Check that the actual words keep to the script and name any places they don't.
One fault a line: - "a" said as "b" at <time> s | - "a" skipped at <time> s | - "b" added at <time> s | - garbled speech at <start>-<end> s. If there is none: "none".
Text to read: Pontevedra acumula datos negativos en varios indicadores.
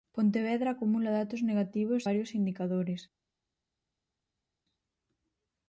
- "en" skipped at 2.1 s